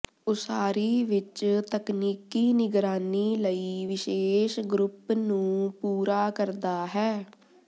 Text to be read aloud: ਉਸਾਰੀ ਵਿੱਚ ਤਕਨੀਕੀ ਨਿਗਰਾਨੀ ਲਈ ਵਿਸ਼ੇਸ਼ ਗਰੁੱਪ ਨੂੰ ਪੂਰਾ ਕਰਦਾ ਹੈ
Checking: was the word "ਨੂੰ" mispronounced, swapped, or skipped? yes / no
no